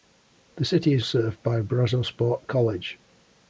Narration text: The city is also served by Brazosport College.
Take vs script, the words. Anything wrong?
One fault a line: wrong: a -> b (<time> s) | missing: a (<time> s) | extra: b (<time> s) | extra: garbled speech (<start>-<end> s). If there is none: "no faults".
missing: also (1.1 s)